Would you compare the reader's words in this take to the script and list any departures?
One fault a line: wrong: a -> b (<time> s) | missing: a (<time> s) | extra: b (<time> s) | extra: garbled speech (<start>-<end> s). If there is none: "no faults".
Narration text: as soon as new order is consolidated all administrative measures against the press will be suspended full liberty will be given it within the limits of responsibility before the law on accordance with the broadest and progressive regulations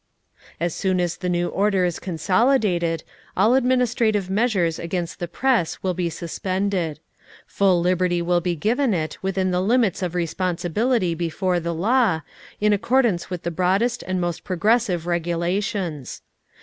extra: the (1.2 s)
wrong: on -> in (12.6 s)
extra: most (14.2 s)